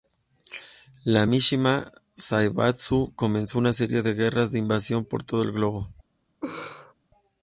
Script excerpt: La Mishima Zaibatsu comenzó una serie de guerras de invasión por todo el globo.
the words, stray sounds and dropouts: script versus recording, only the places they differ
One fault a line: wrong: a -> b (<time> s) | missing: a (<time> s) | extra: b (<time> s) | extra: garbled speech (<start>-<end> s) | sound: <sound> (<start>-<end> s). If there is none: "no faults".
sound: laugh (6.4-6.9 s)